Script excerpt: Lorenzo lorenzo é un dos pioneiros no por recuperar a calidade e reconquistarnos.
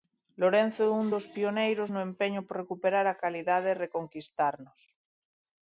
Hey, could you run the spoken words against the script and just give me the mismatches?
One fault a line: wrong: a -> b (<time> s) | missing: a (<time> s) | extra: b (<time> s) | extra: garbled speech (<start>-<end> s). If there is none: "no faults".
missing: lorenzo (0.8 s)
extra: empeño (2.1 s)